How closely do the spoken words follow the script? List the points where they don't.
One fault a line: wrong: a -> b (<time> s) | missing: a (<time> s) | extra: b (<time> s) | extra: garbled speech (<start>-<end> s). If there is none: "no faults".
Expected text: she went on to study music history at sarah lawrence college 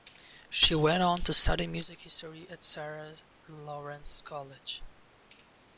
no faults